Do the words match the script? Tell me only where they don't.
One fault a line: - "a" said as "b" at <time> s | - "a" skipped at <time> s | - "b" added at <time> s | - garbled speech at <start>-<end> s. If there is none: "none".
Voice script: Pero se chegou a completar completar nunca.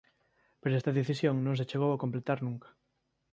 - "esta decisión non" added at 0.8 s
- "completar" skipped at 2.4 s